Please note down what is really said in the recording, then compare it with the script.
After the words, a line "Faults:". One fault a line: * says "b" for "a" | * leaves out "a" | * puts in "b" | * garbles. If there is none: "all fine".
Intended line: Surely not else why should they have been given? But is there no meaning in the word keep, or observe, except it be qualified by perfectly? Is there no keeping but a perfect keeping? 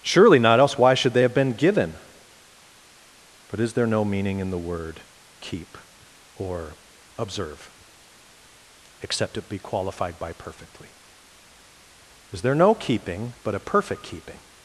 Surely not else why should they have been given? But is there no meaning in the word keep, or observe, except it be qualified by perfectly? Is there no keeping but a perfect keeping?
Faults:
all fine